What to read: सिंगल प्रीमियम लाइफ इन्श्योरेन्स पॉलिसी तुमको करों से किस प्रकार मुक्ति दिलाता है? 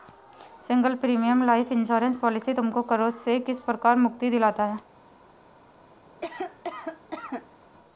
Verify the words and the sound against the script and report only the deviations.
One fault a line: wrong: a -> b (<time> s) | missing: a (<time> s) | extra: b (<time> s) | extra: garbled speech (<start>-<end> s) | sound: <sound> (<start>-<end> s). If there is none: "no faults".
sound: cough (6.1-7.6 s)